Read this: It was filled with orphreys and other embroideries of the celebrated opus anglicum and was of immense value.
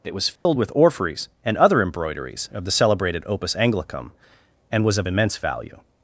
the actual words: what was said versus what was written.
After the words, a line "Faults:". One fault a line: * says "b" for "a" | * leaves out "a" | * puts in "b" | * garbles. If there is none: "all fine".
It was filled with orphreys and other embroideries of the celebrated opus anglicum and was of immense value.
Faults:
all fine